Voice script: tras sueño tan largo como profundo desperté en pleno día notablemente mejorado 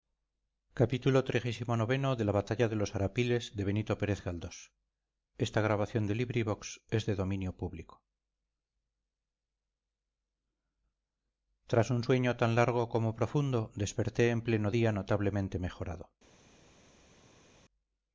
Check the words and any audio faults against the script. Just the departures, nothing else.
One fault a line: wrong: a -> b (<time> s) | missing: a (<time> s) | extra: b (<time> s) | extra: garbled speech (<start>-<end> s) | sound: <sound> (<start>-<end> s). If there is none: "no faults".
extra: un (11.9 s)